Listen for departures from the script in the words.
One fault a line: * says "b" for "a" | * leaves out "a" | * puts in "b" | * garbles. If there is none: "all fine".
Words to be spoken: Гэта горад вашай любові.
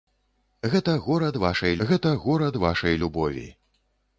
* puts in "гэта горад вашай"